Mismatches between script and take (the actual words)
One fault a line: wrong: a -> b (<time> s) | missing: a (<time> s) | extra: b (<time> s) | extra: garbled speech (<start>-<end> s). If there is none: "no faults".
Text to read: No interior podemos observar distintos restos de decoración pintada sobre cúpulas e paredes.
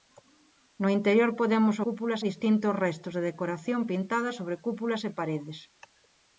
wrong: observar -> cúpulas (1.8 s)